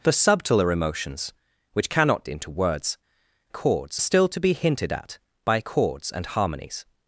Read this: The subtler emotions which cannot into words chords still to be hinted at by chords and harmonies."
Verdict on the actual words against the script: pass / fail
pass